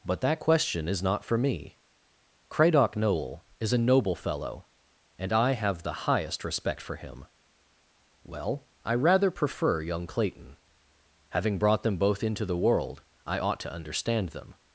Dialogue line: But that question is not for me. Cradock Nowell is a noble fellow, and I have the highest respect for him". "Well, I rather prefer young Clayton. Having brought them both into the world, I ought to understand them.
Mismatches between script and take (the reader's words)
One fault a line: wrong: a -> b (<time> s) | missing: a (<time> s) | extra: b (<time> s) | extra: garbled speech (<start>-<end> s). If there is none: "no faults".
no faults